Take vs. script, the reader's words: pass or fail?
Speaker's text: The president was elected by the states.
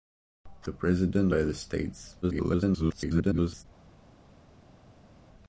fail